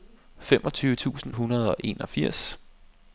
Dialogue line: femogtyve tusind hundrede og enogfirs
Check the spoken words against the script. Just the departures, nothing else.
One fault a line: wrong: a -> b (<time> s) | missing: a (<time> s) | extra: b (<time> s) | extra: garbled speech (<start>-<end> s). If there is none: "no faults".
no faults